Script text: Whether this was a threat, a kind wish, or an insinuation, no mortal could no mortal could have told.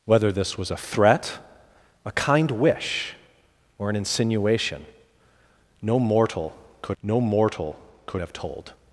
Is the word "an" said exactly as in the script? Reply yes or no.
yes